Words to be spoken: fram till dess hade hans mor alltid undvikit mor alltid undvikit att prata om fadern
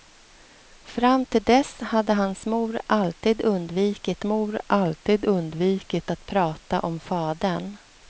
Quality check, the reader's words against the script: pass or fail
pass